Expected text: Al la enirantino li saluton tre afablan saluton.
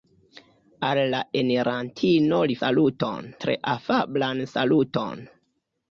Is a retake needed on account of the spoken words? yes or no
no